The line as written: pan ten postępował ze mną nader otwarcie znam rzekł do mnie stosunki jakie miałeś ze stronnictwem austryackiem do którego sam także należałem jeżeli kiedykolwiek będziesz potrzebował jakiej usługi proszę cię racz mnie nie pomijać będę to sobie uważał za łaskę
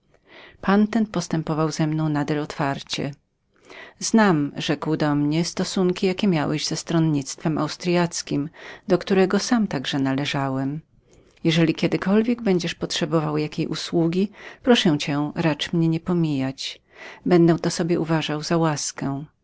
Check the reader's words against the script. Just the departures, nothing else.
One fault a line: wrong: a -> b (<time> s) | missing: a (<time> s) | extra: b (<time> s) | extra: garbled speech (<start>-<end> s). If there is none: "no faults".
no faults